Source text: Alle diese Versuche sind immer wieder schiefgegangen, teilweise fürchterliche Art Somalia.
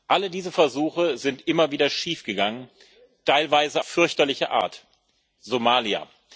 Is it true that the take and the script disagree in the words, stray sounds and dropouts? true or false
false